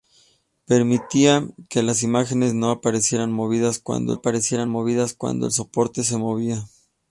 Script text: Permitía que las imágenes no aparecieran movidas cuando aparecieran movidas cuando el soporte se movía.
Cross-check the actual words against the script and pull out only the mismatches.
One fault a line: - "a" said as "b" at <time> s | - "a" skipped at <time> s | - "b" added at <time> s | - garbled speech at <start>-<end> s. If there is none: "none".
none